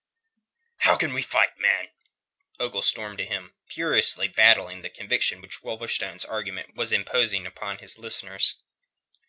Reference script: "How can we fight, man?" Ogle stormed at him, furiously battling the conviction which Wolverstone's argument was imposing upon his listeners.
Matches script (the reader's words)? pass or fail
pass